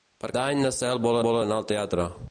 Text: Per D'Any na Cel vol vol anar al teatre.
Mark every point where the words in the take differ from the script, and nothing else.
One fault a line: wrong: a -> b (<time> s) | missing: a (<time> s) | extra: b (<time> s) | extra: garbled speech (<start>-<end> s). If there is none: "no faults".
no faults